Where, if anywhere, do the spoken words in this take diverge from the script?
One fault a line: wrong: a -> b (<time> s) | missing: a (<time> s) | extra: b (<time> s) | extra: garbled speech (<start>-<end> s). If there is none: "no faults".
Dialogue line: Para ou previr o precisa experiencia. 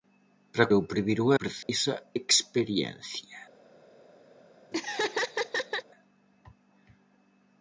no faults